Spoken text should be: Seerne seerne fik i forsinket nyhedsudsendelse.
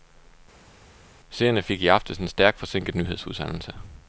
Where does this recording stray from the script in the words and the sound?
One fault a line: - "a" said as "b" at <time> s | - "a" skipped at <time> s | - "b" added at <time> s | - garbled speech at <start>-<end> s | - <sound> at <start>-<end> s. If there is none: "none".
- "seerne" skipped at 1.6 s
- "aftes en stærkt" added at 1.9 s